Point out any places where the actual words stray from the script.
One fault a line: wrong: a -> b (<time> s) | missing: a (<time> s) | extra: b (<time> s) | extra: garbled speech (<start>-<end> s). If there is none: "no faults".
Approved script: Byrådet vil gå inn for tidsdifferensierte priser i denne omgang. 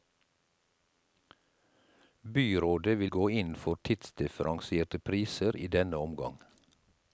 no faults